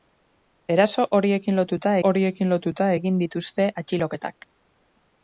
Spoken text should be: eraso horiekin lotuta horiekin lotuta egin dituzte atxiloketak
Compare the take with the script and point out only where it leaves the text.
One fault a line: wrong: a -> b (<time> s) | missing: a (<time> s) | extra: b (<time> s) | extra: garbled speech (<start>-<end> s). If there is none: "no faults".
no faults